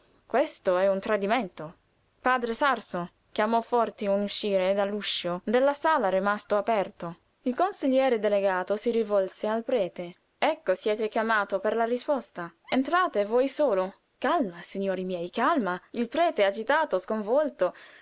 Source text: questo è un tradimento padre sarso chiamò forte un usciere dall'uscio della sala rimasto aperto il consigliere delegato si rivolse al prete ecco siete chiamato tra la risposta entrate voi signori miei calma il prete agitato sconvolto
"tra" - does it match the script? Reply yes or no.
no